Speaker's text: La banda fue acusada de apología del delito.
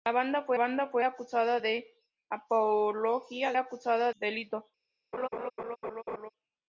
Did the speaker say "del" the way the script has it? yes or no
no